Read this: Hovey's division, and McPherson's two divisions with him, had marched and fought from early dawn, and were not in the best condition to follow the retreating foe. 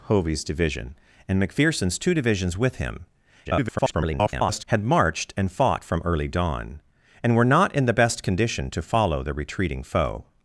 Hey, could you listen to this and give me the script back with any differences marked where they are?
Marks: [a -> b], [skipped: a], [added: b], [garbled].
Hovey's division, and McPherson's two divisions with him, [garbled] had marched and fought from early dawn, and were not in the best condition to follow the retreating foe.